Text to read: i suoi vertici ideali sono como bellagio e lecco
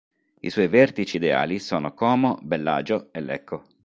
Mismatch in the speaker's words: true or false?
false